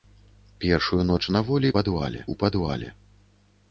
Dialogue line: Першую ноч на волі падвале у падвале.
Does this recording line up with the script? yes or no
yes